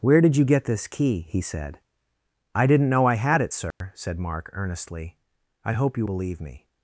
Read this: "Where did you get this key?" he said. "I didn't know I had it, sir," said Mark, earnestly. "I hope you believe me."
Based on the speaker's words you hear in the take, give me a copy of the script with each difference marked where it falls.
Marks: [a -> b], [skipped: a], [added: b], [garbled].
"Where did you get this key?" he said. "I didn't know I had it, sir," said Mark, earnestly. "I hope you believe me."